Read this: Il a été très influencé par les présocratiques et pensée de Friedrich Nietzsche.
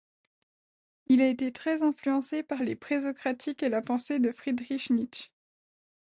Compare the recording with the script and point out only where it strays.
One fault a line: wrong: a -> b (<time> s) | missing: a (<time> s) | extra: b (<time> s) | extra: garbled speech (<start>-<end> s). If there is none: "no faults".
extra: la (3.7 s)